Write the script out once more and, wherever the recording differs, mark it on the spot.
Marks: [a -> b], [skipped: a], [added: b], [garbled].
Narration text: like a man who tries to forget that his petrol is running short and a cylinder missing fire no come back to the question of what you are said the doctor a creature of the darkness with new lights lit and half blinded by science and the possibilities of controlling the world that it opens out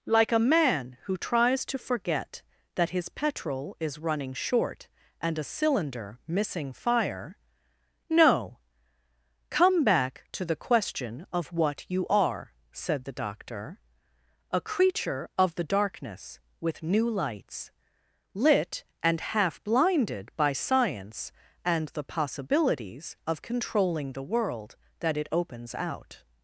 like a man who tries to forget that his petrol is running short and a cylinder missing fire no come back to the question of what you are said the doctor a creature of the darkness with new lights lit and half blinded by science and the possibilities of controlling the world that it opens out